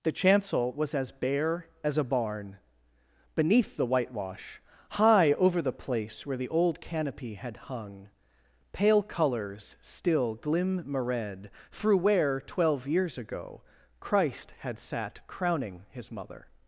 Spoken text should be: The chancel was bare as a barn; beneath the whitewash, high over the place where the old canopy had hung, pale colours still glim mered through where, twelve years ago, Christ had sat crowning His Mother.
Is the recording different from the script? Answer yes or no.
yes